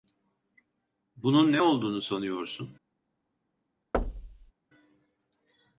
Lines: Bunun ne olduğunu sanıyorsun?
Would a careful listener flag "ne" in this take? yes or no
no